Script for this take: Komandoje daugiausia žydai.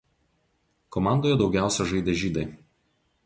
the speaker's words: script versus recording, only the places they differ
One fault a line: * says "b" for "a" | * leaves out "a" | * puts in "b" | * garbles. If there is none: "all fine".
* puts in "žaidė"